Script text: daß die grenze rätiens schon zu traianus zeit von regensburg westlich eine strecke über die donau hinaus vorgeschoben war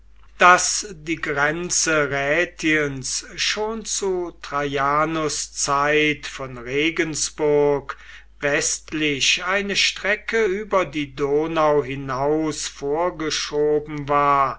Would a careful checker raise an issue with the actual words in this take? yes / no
no